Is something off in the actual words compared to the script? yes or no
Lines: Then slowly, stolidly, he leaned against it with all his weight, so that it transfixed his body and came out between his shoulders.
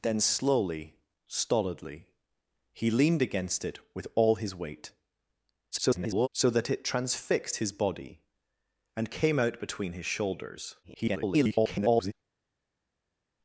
yes